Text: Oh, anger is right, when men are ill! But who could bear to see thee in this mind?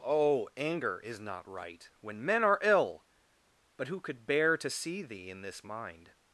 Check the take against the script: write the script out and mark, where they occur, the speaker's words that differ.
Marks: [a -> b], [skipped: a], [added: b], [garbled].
Oh, anger is [added: not] right, when men are ill! But who could bear to see thee in this mind?